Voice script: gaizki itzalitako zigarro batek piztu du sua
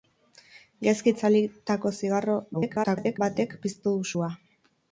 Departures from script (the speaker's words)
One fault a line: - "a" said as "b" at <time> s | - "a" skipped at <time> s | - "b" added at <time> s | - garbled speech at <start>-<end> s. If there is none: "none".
- garbled speech at 2.5-3.2 s